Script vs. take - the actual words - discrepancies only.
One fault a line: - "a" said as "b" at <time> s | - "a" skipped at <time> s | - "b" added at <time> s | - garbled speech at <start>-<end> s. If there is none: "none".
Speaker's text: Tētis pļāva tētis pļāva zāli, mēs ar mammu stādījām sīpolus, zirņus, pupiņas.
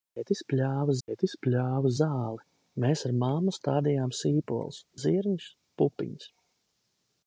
none